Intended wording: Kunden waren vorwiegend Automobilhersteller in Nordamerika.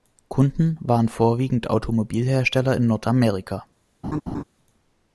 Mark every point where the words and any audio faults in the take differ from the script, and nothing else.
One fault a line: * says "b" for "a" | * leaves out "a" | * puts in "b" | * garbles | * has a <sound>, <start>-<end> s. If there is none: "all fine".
* has a laugh, 4.0-4.4 s